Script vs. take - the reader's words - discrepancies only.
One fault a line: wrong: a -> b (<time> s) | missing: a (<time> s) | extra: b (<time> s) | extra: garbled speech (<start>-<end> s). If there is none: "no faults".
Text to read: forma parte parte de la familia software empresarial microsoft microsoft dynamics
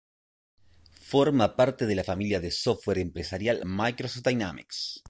missing: parte (1.9 s)
extra: de (2.4 s)
missing: microsoft (4.3 s)